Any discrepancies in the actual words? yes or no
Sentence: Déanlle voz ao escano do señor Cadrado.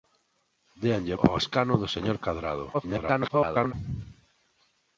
yes